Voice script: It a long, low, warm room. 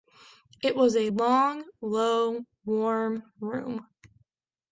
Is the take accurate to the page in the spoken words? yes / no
no